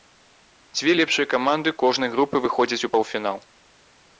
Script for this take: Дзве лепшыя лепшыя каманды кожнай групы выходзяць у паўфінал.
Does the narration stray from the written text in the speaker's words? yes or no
yes